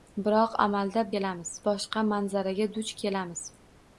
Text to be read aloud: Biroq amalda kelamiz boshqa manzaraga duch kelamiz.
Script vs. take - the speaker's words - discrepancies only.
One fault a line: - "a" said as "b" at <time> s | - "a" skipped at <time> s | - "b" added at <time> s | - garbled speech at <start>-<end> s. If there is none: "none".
none